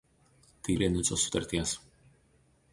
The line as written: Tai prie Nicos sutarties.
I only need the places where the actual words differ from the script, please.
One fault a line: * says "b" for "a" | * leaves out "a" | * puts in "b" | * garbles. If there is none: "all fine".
all fine